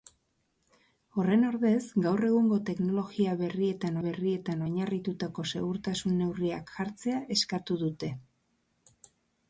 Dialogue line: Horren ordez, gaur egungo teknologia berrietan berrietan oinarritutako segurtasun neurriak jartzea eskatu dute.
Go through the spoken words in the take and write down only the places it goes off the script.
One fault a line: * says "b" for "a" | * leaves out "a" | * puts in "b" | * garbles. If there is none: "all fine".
all fine